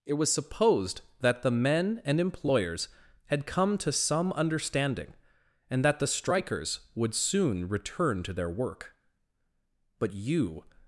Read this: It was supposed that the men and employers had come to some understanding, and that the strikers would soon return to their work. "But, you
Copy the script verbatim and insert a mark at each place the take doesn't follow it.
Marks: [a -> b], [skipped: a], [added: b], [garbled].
It was supposed that the men and employers had come to some understanding, and that the strikers would soon return to their work. "But, you